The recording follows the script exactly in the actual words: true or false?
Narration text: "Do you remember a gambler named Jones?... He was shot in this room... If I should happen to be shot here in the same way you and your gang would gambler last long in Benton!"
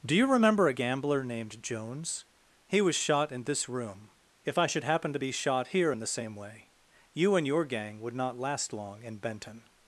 false